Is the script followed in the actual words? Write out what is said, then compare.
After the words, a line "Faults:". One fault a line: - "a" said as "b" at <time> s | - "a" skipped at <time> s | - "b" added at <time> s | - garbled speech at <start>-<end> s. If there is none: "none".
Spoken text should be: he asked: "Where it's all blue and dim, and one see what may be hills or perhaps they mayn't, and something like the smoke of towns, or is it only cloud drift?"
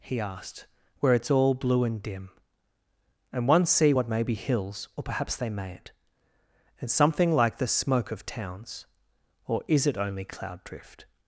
he asked: "Where it's all blue and dim, and one see what may be hills or perhaps they mayn't, and something like the smoke of towns, or is it only cloud drift?"
Faults:
none